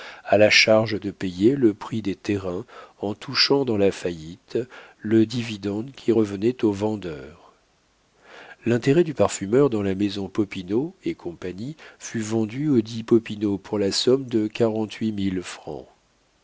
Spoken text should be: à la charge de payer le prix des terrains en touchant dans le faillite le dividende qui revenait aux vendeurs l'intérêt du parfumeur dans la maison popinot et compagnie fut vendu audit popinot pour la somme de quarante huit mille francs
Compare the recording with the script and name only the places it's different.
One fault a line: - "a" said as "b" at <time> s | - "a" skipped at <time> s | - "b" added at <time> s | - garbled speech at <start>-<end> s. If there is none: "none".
- "le" said as "la" at 3.8 s